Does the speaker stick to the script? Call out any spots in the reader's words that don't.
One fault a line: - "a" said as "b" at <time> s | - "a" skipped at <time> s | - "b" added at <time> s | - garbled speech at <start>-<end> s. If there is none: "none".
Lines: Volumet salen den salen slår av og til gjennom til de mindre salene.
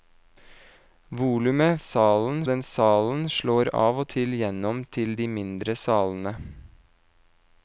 none